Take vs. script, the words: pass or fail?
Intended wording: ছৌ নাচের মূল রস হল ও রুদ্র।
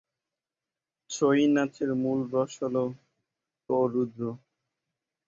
pass